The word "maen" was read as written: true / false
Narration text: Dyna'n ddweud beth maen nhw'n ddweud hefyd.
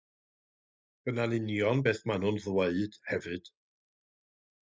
true